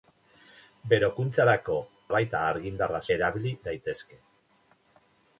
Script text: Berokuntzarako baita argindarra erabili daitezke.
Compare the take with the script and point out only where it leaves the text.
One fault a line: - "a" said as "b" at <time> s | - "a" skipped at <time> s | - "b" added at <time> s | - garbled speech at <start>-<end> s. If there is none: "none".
none